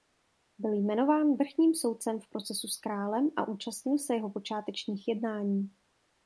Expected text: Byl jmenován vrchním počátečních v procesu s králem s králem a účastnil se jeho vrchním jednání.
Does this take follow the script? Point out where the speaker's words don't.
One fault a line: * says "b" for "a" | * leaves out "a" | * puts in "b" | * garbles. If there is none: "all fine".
* says "soudcem" for "počátečních"
* leaves out "s králem"
* says "počátečních" for "vrchním"